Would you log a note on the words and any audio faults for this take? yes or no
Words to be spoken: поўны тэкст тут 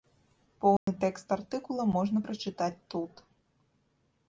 yes